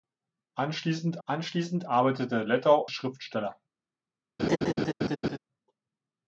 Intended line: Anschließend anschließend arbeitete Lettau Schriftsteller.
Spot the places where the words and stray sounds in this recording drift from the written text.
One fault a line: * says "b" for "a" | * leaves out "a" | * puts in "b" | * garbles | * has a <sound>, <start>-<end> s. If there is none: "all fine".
* has a laugh, 4.4-5.4 s